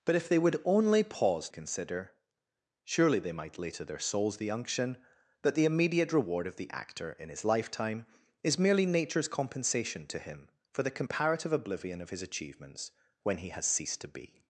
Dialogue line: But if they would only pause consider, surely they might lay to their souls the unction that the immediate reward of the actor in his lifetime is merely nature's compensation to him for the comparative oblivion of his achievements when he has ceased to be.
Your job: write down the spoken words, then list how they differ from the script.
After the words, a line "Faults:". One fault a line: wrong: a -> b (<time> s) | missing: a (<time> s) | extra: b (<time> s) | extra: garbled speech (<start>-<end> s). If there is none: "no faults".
But if they would only pause consider, surely they might lay to their souls the unction that the immediate reward of the actor in his lifetime is merely nature's compensation to him for the comparative oblivion of his achievements when he has ceased to be.
Faults:
no faults